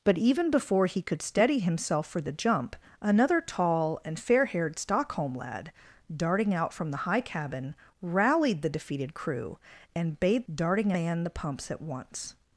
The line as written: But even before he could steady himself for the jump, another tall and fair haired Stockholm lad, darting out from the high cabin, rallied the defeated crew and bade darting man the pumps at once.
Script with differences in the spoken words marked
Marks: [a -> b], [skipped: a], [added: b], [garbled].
But even before he could steady himself for the jump, another tall and fair haired Stockholm lad, darting out from the high cabin, rallied the defeated crew and bade darting man the pumps at once.